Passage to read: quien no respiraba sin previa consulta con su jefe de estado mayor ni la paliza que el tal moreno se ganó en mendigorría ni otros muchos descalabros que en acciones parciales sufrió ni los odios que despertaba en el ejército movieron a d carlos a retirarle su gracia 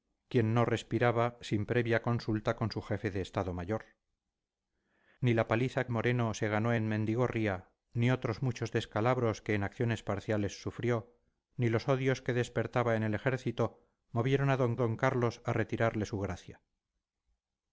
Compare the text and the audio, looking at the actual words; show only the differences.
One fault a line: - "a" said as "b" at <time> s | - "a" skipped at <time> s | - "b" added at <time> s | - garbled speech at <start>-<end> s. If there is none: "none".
- "que el tal" skipped at 5.8 s
- "d" added at 14.8 s